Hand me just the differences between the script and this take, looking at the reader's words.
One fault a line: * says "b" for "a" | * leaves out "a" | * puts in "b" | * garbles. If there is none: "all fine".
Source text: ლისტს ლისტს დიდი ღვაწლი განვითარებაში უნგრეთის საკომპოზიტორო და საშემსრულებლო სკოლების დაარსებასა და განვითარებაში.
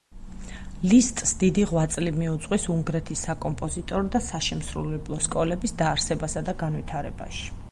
* leaves out "ლისტს"
* says "მიუძღვის" for "განვითარებაში"